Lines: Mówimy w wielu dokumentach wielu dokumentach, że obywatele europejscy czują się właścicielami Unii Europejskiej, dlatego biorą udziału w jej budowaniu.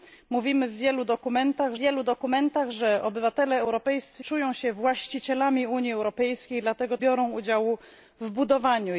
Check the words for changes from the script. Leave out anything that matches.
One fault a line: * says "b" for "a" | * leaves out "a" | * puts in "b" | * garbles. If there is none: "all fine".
all fine